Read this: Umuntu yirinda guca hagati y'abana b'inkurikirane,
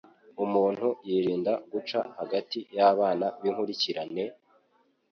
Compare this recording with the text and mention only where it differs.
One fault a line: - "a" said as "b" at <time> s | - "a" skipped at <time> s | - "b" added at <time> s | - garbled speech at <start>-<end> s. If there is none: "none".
none